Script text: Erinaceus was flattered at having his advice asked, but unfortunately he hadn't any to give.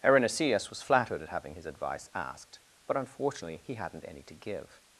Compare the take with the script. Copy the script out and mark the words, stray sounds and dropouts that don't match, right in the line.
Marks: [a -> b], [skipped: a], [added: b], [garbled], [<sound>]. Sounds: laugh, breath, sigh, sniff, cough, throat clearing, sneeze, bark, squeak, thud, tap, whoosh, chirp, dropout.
Erinaceus was flattered at having his advice asked, but unfortunately he hadn't any to give.